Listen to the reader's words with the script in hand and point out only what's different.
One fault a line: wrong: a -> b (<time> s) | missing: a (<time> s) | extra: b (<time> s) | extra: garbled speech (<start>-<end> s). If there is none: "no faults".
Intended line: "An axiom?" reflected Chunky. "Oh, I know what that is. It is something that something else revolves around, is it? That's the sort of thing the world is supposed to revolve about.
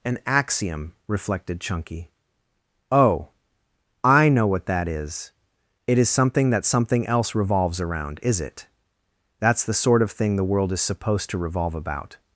no faults